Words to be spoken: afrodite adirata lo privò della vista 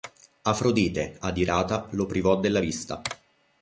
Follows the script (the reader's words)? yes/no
yes